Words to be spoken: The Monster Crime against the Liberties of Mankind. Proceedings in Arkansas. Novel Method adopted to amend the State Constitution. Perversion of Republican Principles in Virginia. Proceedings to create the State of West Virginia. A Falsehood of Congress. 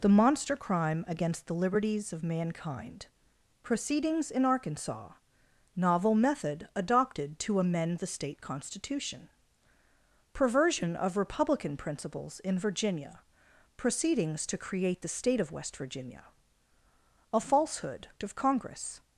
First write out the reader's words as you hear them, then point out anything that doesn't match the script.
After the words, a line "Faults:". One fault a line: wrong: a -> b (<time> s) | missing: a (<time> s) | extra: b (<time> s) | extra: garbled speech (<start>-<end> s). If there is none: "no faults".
The Monster Crime against the Liberties of Mankind. Proceedings in Arkansas. Novel Method adopted to amend the State Constitution. Perversion of Republican Principles in Virginia. Proceedings to create the State of West Virginia. A Falsehood of Congress.
Faults:
no faults